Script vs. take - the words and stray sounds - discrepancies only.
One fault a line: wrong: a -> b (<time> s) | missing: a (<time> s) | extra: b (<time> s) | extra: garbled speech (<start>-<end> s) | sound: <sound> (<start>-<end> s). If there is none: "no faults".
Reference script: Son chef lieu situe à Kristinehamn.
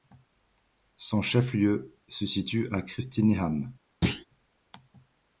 extra: se (2.1 s)
sound: thud (4.0-4.3 s)